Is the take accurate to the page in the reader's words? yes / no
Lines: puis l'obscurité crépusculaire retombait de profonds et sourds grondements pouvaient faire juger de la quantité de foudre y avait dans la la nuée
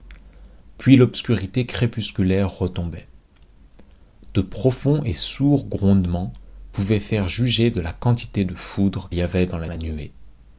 yes